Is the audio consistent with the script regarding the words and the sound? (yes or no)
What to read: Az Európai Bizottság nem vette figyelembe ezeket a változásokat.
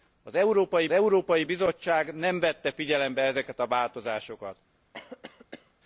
no